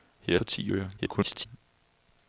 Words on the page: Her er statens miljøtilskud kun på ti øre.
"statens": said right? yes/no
no